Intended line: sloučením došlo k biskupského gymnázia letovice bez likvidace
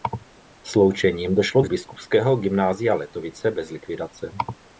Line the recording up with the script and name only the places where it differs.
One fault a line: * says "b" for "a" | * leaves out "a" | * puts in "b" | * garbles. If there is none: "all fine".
all fine